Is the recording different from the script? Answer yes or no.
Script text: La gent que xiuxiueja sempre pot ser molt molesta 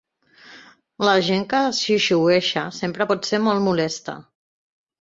no